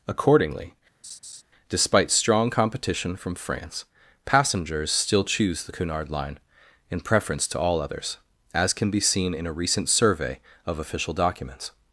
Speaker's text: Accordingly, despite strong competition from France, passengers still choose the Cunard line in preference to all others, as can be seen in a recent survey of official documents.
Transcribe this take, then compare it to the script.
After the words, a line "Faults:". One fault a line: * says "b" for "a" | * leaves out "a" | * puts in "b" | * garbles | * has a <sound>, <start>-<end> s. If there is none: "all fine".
Accordingly, despite strong competition from France, passengers still choose the Cunard line in preference to all others, as can be seen in a recent survey of official documents.
Faults:
* has a laugh, 1.0-1.4 s